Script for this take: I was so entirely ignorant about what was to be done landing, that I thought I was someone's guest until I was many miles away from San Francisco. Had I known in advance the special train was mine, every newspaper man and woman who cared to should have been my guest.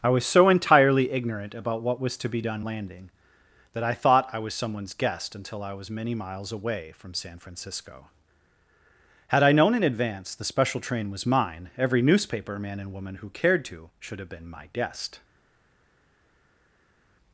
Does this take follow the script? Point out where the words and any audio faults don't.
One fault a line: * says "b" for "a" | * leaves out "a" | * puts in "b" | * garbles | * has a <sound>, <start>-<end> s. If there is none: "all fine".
all fine